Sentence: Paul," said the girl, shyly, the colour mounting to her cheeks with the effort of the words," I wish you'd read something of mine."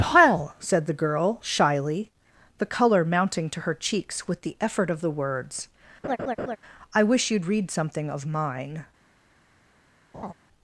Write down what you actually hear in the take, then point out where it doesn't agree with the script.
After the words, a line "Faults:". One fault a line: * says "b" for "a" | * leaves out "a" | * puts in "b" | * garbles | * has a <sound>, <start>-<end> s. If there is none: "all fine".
Paul," said the girl, shyly, the colour mounting to her cheeks with the effort of the words," I wish you'd read something of mine."
Faults:
* has a laugh, 6.0-6.6 s
* has a laugh, 10.1-10.3 s